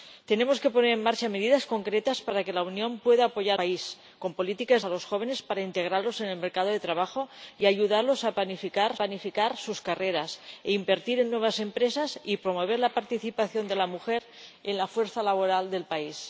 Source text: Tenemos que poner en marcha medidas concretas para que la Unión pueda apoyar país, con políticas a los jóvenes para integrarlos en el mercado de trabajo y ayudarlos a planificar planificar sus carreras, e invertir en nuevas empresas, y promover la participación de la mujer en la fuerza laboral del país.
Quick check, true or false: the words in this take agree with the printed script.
true